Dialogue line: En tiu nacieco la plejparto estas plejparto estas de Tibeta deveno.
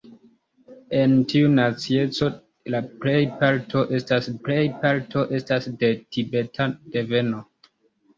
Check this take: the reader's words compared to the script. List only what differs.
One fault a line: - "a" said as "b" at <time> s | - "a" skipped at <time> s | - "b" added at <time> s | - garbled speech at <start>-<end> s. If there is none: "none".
none